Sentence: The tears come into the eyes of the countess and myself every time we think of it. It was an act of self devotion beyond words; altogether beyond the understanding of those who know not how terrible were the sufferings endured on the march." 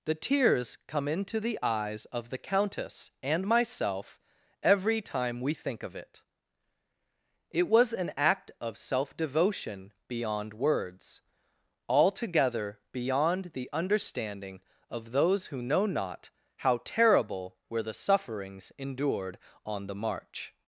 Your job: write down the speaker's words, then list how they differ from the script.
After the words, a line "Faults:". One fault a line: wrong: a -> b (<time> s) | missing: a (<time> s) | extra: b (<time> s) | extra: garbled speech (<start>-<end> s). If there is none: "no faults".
The tears come into the eyes of the countess and myself every time we think of it. It was an act of self devotion beyond words; altogether beyond the understanding of those who know not how terrible were the sufferings endured on the march."
Faults:
no faults